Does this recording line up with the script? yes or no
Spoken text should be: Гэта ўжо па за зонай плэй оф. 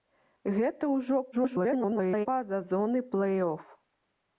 no